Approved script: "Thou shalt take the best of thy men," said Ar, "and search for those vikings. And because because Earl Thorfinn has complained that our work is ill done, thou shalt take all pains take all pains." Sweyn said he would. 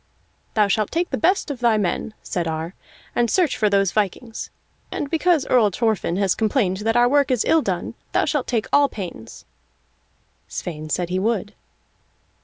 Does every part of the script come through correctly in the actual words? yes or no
no